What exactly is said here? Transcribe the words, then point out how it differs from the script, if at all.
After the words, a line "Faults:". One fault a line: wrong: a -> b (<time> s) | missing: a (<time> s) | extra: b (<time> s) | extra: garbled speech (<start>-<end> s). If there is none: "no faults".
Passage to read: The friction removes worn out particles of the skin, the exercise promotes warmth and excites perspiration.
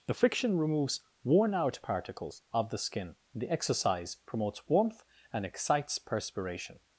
The friction removes worn out particles of the skin, the exercise promotes warmth and excites perspiration.
Faults:
no faults